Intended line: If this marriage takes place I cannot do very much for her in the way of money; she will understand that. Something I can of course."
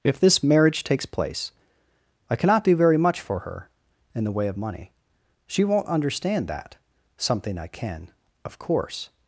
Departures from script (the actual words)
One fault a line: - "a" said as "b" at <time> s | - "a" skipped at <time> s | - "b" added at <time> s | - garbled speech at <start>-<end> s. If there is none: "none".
- "will" said as "won't" at 5.6 s